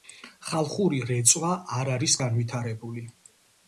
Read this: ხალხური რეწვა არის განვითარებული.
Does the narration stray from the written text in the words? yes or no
yes